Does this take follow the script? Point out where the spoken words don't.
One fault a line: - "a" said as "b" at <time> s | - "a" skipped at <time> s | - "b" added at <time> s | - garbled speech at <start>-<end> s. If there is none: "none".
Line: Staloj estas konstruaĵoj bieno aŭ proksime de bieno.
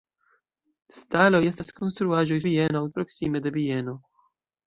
none